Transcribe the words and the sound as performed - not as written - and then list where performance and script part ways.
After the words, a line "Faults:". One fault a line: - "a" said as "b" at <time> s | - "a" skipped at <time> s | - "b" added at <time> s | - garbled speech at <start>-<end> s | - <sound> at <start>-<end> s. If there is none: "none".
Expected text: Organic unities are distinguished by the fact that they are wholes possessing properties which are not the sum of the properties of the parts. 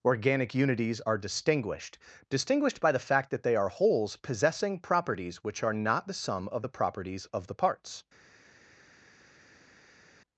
Organic unities are distinguished distinguished by the fact that they are wholes possessing properties which are not the sum of the properties of the parts.
Faults:
- "distinguished" added at 2.3 s